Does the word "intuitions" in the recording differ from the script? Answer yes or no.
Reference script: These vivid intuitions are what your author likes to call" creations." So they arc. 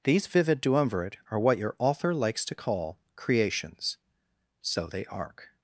yes